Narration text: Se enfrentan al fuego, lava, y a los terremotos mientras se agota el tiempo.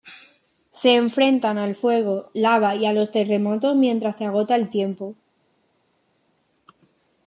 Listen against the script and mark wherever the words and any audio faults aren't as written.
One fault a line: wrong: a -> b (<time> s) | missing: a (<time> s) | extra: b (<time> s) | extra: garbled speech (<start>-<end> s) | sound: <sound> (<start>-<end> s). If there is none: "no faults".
no faults